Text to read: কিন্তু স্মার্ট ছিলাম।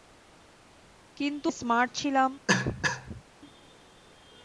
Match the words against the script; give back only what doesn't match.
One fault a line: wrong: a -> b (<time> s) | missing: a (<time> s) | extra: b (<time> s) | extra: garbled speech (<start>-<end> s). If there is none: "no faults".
no faults